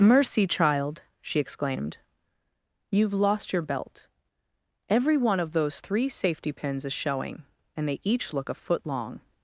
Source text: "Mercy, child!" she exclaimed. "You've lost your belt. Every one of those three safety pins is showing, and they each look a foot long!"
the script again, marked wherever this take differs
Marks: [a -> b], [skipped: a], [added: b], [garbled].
"Mercy, child!" she exclaimed. "You've lost your belt. Every one of those three safety pins is showing, and they each look a foot long!"